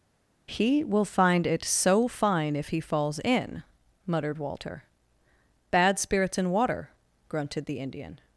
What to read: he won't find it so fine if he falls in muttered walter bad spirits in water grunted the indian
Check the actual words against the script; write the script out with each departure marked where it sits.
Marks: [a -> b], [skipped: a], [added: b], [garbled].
he [won't -> will] find it so fine if he falls in muttered walter bad spirits in water grunted the indian